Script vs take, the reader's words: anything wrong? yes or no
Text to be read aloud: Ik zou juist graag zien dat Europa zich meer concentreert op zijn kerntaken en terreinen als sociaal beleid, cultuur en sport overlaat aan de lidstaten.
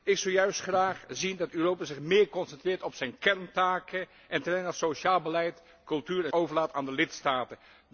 yes